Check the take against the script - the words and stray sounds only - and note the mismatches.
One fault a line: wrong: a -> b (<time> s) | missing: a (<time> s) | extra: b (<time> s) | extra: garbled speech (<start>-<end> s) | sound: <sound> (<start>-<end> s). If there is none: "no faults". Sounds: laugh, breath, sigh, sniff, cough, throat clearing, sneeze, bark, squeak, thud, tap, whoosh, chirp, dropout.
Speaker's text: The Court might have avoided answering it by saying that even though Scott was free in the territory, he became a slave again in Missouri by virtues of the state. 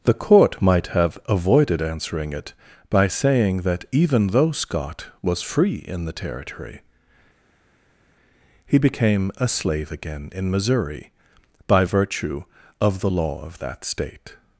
wrong: virtues -> virtue (11.8 s)
extra: law of that (13.1 s)